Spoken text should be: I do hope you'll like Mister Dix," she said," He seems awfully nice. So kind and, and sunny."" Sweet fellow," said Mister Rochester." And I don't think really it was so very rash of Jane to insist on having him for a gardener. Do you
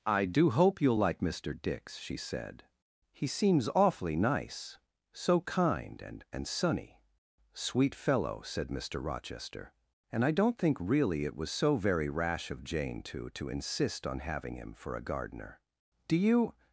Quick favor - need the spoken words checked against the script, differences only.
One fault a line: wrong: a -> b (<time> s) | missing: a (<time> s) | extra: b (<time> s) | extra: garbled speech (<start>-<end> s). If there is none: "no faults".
extra: to (13.3 s)